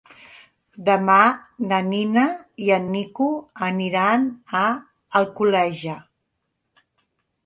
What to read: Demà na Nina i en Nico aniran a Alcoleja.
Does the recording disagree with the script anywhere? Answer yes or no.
no